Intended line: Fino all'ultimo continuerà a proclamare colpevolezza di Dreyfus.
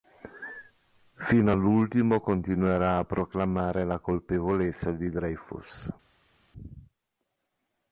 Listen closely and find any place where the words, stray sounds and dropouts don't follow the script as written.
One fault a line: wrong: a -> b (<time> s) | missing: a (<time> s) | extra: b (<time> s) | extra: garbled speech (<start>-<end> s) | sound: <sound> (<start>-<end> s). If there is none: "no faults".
extra: la (3.8 s)